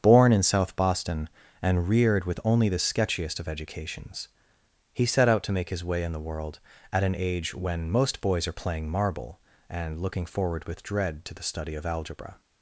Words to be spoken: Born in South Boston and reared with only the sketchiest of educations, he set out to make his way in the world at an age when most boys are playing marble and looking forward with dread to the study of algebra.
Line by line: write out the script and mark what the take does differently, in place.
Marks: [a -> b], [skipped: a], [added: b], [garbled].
Born in South Boston and reared with only the sketchiest of educations, he set out to make his way in the world at an age when most boys are playing marble and looking forward with dread to the study of algebra.